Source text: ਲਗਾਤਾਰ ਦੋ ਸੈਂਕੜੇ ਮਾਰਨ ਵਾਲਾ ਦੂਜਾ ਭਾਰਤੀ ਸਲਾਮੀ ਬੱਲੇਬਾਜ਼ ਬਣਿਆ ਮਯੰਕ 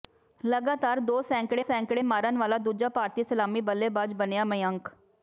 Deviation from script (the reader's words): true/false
true